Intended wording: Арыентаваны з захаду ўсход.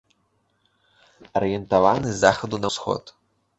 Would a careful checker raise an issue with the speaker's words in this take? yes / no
no